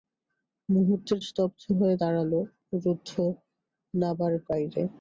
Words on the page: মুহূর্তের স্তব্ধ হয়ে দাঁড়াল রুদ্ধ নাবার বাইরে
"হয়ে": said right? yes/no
yes